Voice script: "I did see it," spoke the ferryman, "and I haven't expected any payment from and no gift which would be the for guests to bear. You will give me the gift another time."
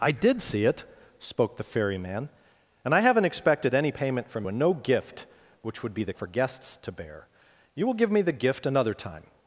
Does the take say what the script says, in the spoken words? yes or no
yes